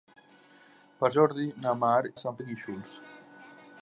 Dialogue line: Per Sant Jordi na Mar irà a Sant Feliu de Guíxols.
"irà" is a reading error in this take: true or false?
true